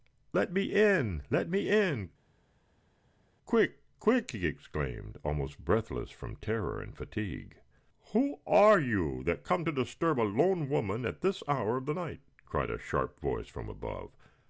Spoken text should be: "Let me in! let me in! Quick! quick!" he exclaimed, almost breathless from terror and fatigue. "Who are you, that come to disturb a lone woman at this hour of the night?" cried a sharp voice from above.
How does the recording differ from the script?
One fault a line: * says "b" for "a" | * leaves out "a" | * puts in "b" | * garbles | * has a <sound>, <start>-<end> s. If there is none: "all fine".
all fine